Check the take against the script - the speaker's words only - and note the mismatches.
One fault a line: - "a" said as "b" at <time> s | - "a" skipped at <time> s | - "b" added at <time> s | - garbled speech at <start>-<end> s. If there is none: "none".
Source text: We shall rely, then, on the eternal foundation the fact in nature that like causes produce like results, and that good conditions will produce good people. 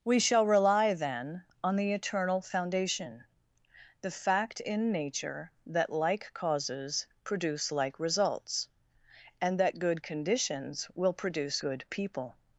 none